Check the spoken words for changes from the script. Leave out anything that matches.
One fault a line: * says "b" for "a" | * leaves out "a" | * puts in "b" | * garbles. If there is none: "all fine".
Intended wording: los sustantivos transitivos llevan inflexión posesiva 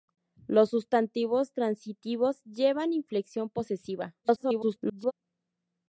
* garbles